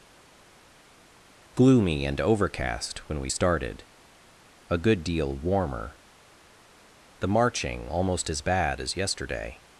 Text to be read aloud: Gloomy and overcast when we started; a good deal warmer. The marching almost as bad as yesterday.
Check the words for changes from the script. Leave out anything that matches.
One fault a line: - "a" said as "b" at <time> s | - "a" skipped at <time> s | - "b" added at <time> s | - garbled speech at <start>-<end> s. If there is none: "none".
none